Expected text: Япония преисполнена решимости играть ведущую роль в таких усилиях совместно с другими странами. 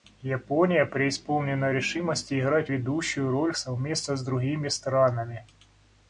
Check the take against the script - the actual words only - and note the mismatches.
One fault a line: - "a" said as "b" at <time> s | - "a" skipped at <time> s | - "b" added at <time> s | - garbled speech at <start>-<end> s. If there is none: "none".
- "в таких усилиях" skipped at 3.5 s